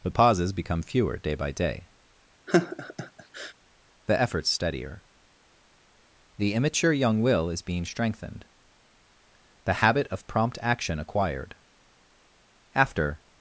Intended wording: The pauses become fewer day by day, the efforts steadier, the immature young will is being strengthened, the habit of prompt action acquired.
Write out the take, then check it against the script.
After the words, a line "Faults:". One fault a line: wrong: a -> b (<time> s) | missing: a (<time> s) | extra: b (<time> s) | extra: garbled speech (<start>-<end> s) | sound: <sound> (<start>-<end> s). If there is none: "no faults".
The pauses become fewer day by day, the efforts steadier, the immature young will is being strengthened, the habit of prompt action acquired. After
Faults:
sound: laugh (2.5-3.5 s)
extra: After (12.7 s)